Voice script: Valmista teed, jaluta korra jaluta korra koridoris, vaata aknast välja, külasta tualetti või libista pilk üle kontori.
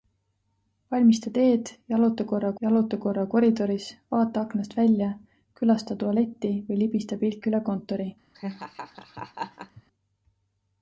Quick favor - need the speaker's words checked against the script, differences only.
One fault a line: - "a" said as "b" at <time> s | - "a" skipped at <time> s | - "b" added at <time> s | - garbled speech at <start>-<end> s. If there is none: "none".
none